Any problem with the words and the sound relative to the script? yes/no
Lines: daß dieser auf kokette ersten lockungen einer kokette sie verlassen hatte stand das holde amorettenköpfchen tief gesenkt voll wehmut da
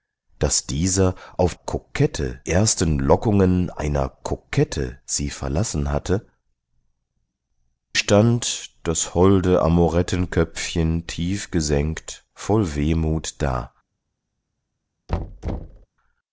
yes